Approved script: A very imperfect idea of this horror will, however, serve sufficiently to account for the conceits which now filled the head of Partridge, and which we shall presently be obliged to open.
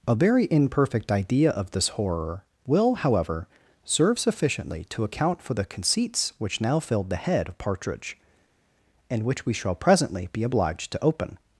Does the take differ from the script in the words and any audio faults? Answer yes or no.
no